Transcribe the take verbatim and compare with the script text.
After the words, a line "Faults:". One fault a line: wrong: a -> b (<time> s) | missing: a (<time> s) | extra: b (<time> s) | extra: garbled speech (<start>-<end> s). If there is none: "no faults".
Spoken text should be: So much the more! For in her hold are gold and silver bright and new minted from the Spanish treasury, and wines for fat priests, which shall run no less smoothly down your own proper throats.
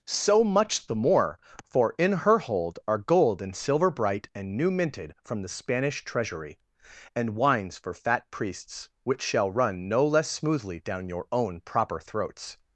So much the more! For in her hold are gold and silver bright and new minted from the Spanish treasury, and wines for fat priests, which shall run no less smoothly down your own proper throats.
Faults:
no faults